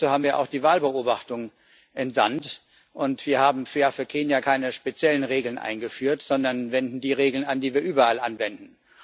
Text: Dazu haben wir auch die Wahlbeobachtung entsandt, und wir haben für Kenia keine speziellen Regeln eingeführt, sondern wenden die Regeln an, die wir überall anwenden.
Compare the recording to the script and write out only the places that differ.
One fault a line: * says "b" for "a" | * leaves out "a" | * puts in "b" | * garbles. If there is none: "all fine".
all fine